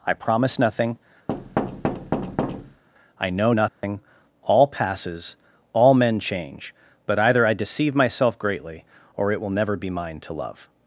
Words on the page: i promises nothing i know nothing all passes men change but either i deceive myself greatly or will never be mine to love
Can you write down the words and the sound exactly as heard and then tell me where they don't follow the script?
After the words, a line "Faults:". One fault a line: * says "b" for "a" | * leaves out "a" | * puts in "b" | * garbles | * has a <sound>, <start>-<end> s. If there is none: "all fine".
i promise nothing i know nothing all passes all men change but either i deceive myself greatly or it will never be mine to love
Faults:
* says "promise" for "promises"
* has a thud, 1.3-2.8 s
* has a dropout, 3.7-3.8 s
* puts in "all"
* puts in "it"